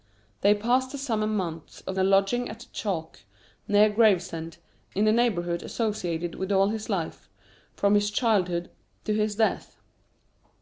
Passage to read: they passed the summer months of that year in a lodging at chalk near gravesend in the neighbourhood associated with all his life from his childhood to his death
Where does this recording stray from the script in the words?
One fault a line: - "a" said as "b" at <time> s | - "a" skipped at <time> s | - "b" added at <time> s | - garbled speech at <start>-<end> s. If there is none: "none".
- "that year in" skipped at 2.0 s